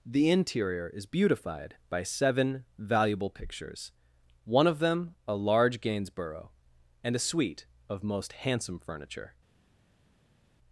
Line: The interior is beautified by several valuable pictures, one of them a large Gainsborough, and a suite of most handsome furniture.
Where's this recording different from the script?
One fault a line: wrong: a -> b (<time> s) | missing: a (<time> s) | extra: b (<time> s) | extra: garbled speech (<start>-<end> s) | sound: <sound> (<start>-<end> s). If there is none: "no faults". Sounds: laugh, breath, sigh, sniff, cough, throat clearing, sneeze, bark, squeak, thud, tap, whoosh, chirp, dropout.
wrong: several -> seven (2.0 s)